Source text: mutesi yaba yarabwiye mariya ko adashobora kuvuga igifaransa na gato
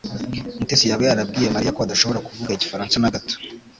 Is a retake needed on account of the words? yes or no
no